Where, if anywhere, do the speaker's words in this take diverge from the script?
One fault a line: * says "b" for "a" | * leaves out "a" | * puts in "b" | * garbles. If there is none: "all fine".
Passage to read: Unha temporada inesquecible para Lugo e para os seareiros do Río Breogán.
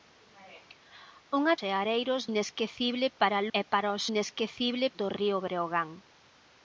* says "seareiros" for "temporada"
* leaves out "Lugo"
* says "inesquecible" for "seareiros"